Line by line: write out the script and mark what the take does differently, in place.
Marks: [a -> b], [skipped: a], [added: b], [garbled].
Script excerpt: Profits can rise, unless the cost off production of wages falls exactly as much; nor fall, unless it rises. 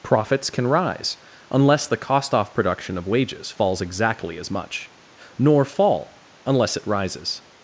Profits can rise, unless the cost off production of wages falls exactly as much; nor fall, unless it rises.